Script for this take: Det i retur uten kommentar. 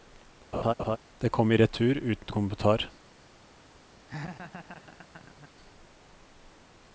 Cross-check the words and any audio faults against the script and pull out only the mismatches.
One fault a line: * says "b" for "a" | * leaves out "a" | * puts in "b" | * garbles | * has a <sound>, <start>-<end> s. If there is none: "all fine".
* has a laugh, 0.5-1.0 s
* puts in "kom"
* has a laugh, 4.1-5.5 s